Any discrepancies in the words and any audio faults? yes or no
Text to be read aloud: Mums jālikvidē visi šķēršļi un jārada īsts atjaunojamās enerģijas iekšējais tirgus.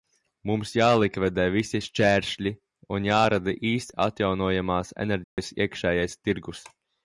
yes